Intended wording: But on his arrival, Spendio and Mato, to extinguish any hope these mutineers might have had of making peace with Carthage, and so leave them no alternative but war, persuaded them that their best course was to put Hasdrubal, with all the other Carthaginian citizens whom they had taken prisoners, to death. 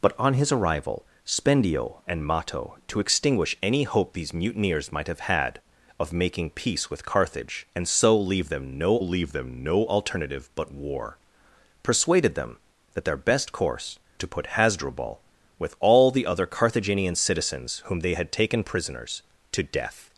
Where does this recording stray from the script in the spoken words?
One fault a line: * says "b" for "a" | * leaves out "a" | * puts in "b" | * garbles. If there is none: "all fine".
* puts in "leave them no"
* leaves out "was"